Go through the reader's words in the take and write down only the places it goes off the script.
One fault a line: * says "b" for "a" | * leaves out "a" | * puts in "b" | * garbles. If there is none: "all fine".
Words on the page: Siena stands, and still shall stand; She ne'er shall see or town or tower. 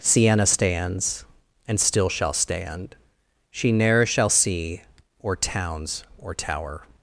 * says "towns" for "town"